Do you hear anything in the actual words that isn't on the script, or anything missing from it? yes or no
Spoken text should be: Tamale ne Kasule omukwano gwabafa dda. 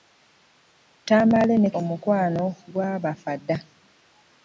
yes